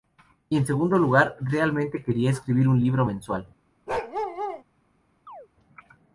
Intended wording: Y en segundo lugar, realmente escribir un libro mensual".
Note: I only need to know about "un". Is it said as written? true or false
true